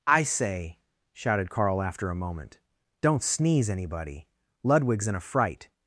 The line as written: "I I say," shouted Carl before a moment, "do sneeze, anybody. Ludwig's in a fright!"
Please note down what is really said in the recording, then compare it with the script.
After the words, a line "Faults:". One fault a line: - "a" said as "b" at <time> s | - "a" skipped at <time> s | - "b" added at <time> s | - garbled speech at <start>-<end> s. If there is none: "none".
"I say," shouted Carl after a moment, "don't sneeze, anybody. Ludwig's in a fright!"
Faults:
- "I" skipped at 0.2 s
- "before" said as "after" at 1.8 s
- "do" said as "don't" at 3.0 s